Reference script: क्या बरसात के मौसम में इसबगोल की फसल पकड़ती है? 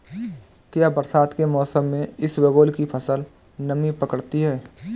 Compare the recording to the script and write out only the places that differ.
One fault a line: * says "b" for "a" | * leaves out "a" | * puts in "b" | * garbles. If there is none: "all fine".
* puts in "नमी"